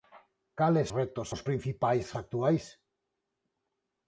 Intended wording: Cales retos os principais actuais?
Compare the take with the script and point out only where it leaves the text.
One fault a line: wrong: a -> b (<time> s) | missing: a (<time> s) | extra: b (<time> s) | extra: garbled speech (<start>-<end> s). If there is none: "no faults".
no faults